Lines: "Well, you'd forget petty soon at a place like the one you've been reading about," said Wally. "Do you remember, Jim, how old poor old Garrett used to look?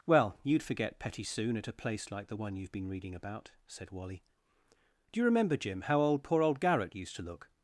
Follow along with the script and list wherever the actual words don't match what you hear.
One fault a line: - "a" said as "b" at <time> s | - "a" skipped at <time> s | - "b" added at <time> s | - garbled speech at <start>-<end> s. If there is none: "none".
none